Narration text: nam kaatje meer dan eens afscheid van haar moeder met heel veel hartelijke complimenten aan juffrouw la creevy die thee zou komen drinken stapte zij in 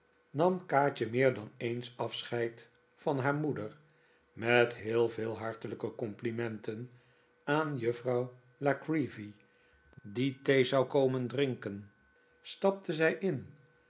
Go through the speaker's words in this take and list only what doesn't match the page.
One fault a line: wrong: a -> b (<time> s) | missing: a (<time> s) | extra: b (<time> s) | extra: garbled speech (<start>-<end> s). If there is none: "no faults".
no faults